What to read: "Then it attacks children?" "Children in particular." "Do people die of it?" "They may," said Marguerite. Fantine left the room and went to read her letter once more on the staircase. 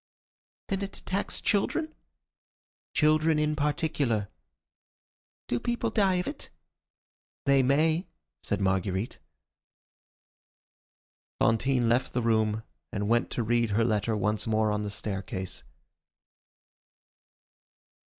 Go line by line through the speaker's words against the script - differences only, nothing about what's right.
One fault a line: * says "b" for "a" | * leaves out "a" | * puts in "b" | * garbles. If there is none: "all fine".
all fine